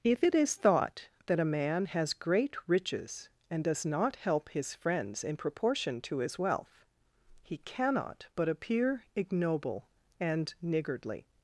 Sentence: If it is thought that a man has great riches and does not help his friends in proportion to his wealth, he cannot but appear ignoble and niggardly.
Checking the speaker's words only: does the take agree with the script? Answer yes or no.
yes